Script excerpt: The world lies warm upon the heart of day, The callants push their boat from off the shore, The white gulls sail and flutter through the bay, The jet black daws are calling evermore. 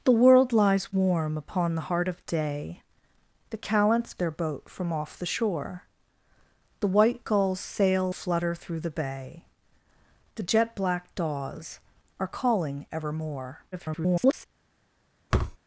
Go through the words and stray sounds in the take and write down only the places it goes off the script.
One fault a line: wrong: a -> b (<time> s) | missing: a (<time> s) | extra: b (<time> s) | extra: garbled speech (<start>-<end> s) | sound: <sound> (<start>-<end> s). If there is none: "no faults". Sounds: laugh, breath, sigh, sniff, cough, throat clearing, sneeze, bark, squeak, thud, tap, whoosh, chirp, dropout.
missing: push (4.2 s)
missing: and (8.1 s)
extra: garbled speech (13.7-14.5 s)
sound: thud (15.3-15.6 s)